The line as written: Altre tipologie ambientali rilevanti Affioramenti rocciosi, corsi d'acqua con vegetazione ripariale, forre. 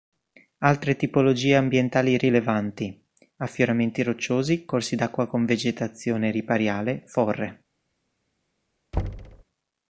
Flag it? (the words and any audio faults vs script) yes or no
yes